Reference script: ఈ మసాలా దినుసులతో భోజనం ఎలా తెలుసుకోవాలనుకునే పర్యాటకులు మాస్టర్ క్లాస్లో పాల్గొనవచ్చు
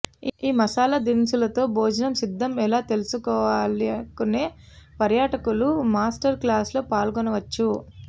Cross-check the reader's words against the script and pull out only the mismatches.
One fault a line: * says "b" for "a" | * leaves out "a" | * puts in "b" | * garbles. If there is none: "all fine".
* puts in "సిద్ధం"